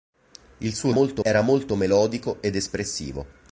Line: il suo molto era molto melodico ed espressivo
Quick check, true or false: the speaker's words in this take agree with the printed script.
true